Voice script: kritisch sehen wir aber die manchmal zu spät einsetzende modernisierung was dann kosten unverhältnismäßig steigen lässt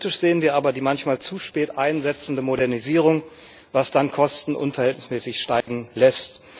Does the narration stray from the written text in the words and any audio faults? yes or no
yes